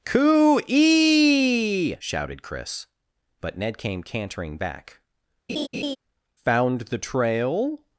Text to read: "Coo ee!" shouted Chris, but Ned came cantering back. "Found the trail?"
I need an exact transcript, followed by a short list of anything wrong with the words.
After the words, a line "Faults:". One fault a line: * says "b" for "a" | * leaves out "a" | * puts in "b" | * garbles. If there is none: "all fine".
"Coo ee!" shouted Chris, but Ned came cantering back. "Found the trail?"
Faults:
all fine